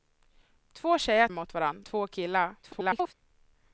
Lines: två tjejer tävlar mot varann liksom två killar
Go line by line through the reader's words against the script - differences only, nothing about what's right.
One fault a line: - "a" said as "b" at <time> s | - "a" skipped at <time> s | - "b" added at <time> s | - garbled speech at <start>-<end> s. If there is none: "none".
- "tävlar" skipped at 1.3 s
- "liksom" skipped at 1.8 s
- garbled speech at 2.6-3.1 s